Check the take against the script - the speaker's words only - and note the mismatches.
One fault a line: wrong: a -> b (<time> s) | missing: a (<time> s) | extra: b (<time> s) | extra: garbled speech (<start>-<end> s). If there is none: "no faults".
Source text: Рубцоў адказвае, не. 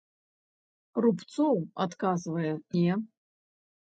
no faults